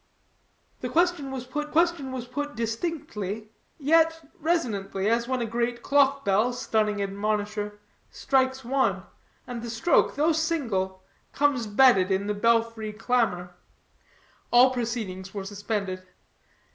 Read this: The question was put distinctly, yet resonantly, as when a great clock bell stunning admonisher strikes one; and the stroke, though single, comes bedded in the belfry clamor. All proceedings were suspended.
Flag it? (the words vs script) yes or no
yes